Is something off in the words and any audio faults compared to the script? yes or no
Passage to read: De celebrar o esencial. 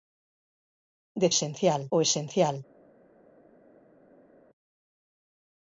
yes